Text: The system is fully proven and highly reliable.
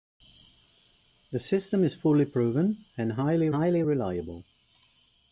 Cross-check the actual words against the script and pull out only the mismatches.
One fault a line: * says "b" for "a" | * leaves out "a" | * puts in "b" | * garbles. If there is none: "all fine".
* puts in "highly"